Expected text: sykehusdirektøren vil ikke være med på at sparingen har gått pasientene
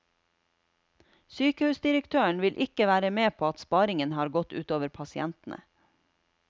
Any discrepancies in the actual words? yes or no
yes